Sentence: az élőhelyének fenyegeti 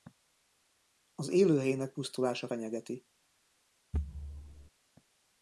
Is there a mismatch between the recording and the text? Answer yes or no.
yes